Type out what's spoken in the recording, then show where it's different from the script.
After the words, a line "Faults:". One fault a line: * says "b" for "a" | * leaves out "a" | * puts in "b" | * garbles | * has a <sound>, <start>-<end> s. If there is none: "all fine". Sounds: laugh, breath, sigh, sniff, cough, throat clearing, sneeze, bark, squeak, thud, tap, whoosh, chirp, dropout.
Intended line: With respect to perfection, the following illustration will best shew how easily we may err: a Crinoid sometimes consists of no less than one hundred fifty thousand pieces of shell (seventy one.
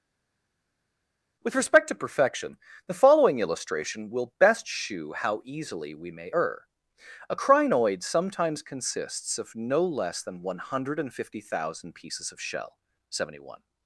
With respect to perfection, the following illustration will best shew how easily we may err: a Crinoid sometimes consists of no less than one hundred fifty thousand pieces of shell (seventy one.
Faults:
all fine